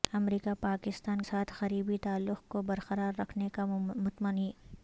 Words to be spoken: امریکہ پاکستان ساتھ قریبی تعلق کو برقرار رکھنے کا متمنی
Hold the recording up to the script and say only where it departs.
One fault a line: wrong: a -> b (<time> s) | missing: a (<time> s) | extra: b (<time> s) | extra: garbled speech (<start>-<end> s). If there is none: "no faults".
no faults